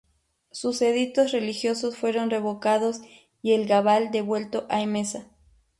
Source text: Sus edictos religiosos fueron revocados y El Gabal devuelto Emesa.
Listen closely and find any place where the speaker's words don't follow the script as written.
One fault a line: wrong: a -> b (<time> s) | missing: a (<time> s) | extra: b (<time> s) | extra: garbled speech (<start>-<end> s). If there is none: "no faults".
extra: a (4.7 s)